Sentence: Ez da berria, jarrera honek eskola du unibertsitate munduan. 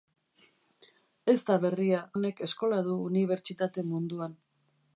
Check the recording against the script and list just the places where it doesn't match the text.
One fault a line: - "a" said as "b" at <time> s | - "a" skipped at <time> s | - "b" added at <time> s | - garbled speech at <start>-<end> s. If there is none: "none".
- "jarrera" skipped at 2.0 s